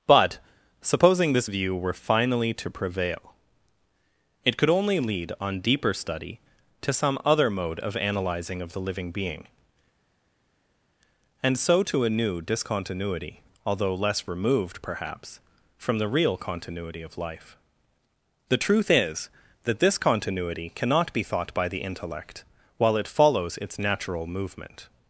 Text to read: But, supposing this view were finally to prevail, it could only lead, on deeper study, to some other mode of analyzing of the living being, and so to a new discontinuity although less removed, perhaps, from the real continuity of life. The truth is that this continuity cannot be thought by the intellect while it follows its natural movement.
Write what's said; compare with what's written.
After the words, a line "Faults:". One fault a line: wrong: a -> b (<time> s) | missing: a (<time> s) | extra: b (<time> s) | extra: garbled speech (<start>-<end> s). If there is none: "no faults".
But, supposing this view were finally to prevail, it could only lead, on deeper study, to some other mode of analyzing of the living being, and so to a new discontinuity although less removed, perhaps, from the real continuity of life. The truth is that this continuity cannot be thought by the intellect while it follows its natural movement.
Faults:
no faults